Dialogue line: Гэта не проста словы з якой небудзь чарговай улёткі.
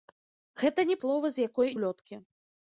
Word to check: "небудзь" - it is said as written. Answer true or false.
false